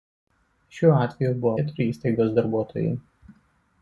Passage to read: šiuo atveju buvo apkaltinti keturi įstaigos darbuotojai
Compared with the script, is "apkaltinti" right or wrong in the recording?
wrong